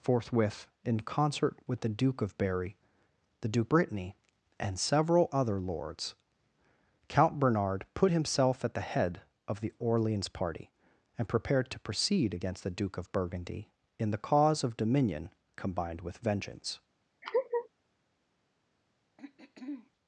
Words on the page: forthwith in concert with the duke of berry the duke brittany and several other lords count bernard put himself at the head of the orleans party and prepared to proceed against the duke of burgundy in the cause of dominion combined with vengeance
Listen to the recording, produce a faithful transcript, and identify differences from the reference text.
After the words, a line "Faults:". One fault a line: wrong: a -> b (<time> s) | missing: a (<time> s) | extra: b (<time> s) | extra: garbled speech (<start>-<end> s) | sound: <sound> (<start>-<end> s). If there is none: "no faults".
forthwith in concert with the duke of berry the duke brittany and several other lords count bernard put himself at the head of the orleans party and prepared to proceed against the duke of burgundy in the cause of dominion combined with vengeance
Faults:
sound: laugh (17.2-17.7 s)
sound: throat clearing (19.2-19.9 s)